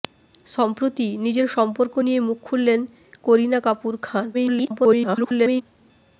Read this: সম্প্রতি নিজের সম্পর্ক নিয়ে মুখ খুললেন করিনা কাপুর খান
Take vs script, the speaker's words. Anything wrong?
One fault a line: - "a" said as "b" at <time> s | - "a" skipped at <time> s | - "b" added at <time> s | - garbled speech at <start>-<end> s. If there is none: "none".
- garbled speech at 4.3-5.6 s